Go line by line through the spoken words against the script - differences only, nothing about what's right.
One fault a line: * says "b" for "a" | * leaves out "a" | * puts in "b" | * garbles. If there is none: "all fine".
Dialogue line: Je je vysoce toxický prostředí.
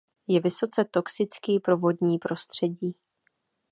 * leaves out "je"
* puts in "pro vodní"